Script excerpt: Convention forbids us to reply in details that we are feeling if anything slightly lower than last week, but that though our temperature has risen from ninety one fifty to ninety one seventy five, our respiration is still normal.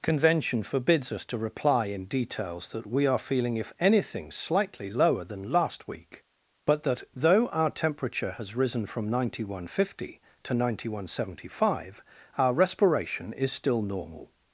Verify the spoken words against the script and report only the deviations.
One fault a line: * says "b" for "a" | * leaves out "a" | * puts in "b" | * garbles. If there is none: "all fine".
all fine